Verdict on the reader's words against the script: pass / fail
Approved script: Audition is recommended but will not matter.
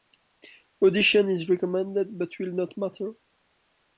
pass